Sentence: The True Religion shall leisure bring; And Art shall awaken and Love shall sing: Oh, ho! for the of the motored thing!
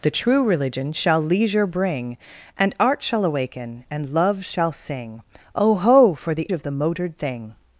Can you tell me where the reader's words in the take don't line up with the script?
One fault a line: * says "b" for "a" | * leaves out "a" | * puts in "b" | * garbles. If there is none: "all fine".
all fine